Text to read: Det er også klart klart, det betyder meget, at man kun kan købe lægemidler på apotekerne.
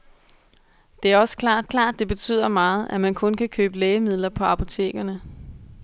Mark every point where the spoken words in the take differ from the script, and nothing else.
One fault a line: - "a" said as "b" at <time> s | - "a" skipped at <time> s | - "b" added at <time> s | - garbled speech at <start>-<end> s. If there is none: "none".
none